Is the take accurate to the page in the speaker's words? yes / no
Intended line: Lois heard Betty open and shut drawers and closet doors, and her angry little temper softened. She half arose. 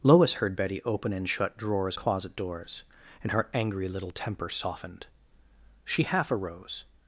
no